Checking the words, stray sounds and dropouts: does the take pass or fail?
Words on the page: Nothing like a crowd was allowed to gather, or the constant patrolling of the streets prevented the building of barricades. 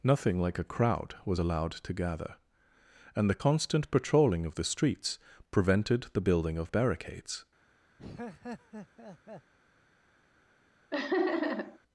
fail